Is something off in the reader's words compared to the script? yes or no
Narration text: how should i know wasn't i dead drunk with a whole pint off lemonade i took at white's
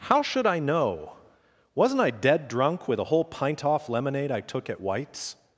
no